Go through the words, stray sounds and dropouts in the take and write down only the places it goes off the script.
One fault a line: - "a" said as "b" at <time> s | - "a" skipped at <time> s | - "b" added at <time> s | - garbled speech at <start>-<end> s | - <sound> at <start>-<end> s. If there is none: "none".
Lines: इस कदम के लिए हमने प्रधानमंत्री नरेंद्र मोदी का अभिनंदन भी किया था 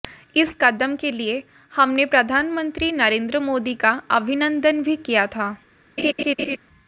- laugh at 6.0-6.6 s